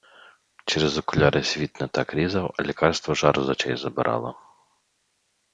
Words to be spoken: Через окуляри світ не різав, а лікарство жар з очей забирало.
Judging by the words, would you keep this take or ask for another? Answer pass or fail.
fail